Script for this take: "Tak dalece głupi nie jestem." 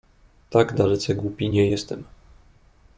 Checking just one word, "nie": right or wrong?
right